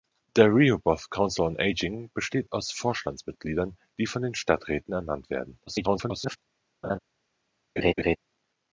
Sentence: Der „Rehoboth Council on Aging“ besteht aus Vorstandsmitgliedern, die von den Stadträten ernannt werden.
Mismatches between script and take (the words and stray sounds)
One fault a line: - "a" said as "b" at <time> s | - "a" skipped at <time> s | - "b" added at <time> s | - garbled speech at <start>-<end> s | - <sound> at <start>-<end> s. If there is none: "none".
- garbled speech at 5.7-6.4 s
- laugh at 6.8-7.0 s
- laugh at 7.8-8.2 s